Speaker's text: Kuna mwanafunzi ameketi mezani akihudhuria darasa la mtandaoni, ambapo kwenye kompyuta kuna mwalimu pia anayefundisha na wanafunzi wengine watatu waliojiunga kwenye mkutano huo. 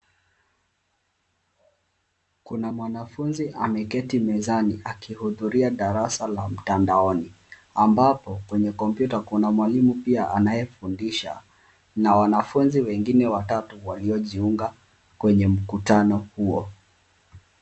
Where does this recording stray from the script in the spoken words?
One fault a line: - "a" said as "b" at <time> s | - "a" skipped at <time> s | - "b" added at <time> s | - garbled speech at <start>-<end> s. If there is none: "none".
none